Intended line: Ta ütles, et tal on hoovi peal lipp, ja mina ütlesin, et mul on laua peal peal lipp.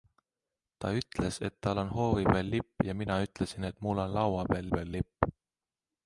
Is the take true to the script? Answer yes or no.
yes